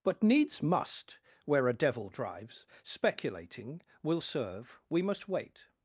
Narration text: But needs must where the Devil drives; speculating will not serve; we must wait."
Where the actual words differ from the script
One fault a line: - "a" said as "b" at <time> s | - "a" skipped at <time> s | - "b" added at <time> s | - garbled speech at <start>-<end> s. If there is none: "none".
- "the" said as "a" at 1.7 s
- "not" skipped at 4.2 s